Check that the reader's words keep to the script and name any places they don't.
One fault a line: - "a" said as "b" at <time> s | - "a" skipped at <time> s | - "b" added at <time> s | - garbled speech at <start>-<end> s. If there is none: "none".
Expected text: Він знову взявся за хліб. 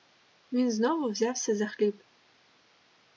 none